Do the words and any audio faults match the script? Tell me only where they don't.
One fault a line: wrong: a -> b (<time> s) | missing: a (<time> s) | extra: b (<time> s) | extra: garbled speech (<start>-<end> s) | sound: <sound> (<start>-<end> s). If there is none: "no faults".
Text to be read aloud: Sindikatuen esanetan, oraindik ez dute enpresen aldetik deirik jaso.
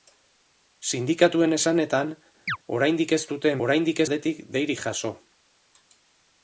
sound: chirp (2.5-2.6 s)
wrong: enpresen -> oraindik (3.7 s)